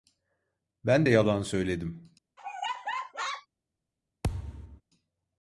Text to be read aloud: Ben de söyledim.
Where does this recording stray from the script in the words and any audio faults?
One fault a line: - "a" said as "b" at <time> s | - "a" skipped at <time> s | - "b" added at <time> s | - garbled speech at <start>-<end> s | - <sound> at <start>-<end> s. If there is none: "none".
- "yalan" added at 1.1 s
- laugh at 2.4-3.5 s
- thud at 4.2-4.8 s